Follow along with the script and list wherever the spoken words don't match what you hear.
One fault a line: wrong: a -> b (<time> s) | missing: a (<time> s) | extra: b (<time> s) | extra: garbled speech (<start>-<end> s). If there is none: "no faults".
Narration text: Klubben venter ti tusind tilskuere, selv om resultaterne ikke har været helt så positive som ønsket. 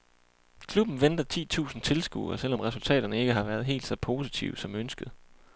no faults